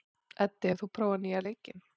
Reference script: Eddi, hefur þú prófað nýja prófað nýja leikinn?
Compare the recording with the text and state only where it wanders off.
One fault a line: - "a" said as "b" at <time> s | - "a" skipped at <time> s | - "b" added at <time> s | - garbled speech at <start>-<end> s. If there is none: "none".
- "prófað nýja" skipped at 1.4 s